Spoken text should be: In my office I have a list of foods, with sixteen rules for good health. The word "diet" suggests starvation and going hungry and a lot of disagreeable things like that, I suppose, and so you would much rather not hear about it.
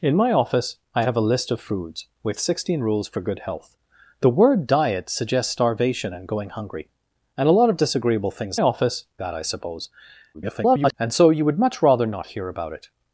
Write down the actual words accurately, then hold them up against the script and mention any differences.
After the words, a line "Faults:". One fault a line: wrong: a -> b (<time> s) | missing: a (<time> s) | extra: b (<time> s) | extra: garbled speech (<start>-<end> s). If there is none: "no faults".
In my office I have a list of foods, with sixteen rules for good health. The word "diet" suggests starvation and going hungry and a lot of disagreeable things office that, I suppose, [garbled] and so you would much rather not hear about it.
Faults:
wrong: like -> office (8.6 s)
extra: garbled speech (10.3-10.9 s)